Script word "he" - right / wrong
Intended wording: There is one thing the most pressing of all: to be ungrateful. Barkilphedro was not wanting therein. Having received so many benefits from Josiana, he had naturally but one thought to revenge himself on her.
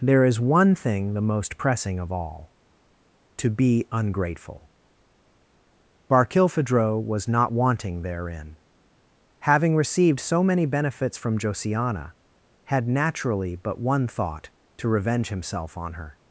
wrong